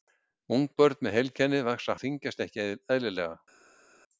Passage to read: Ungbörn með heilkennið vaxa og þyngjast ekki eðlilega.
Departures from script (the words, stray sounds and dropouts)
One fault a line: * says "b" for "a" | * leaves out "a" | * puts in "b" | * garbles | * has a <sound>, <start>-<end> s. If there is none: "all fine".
all fine